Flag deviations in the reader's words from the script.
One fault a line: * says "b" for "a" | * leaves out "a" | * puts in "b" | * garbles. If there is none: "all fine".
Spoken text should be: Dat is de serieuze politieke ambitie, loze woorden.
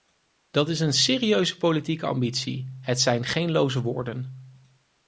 * says "een" for "de"
* puts in "het zijn geen"